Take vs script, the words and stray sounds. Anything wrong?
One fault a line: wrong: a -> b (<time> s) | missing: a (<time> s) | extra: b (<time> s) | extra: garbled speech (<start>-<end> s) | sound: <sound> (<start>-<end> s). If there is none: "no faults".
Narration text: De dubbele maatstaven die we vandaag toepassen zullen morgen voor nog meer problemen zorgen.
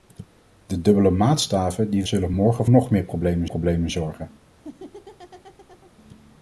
missing: we vandaag toepassen (2.0 s)
missing: voor (2.7 s)
extra: problemen (3.4 s)
sound: laugh (4.5-5.9 s)